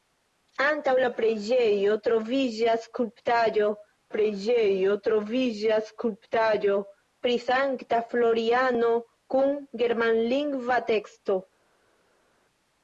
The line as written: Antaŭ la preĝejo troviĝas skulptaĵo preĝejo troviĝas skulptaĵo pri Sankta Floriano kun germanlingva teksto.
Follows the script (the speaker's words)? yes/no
yes